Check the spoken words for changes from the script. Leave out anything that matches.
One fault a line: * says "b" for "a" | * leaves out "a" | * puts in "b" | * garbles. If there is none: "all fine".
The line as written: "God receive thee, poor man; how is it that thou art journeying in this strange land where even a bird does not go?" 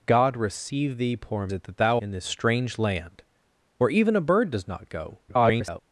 * leaves out "man how is"
* leaves out "art journeying"
* garbles